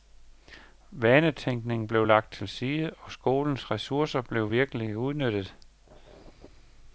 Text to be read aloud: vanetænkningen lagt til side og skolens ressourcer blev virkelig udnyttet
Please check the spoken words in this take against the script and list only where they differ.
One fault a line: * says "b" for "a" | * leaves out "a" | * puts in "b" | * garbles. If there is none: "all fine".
* puts in "blev"